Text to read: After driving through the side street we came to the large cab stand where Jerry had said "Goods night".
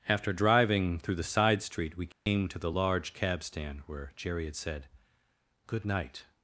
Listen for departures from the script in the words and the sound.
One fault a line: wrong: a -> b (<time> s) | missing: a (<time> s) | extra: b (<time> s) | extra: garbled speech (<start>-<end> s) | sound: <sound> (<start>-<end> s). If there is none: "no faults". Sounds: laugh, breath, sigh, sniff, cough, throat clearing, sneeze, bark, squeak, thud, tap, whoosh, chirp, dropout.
sound: dropout (2.1-2.3 s)
wrong: Goods -> Good (5.7 s)